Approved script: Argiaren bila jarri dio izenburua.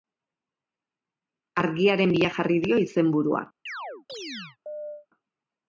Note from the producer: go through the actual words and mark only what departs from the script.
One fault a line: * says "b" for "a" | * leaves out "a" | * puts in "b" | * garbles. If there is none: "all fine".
all fine